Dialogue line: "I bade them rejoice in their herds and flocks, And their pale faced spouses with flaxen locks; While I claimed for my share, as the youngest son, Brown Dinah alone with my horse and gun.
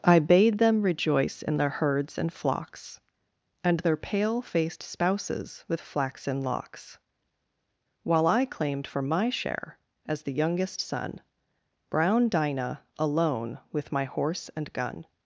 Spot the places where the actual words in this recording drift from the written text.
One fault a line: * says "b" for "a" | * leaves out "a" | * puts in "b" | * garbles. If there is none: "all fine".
all fine